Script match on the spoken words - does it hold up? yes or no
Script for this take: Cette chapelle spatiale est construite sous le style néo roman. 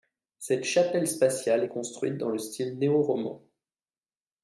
no